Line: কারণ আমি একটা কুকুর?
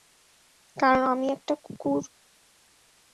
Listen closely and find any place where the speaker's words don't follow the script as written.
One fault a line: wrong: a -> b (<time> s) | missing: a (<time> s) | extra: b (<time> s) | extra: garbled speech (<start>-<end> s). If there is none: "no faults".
no faults